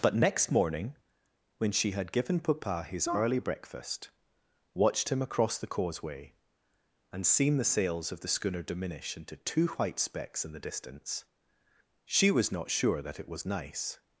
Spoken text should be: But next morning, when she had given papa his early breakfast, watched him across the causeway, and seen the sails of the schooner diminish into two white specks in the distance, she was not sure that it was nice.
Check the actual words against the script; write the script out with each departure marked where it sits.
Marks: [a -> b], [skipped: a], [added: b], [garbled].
But next morning, when she had given papa his early breakfast, watched him across the causeway, and seen the sails of the schooner diminish into two white specks in the distance, she was not sure that it was nice.